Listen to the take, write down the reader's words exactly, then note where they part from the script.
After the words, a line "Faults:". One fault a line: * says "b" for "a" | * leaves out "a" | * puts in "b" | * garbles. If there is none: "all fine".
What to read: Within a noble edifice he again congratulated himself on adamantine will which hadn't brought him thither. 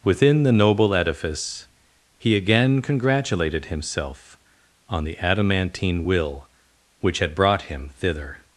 Within the noble edifice he again congratulated himself on the adamantine will which had brought him thither.
Faults:
* says "the" for "a"
* puts in "the"
* says "had" for "hadn't"